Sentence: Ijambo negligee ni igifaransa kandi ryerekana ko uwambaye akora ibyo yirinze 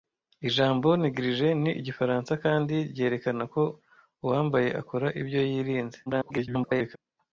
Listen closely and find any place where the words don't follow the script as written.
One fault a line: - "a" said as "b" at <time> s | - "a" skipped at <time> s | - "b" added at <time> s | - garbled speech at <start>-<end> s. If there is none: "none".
- garbled speech at 6.1-7.0 s